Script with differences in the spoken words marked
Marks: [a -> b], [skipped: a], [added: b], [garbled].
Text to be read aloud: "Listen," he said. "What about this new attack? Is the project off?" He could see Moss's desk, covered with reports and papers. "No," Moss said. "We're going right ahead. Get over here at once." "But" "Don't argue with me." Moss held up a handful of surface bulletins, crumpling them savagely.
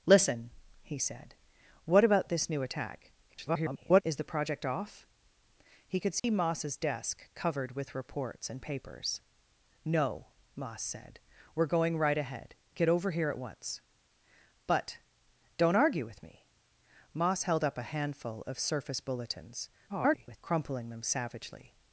"Listen," he said. "What about this new attack? [garbled] Is the project off?" He could see Moss's desk, covered with reports and papers. "No," Moss said. "We're going right ahead. Get over here at once." "But" "Don't argue with me." Moss held up a handful of surface bulletins, [garbled] crumpling them savagely.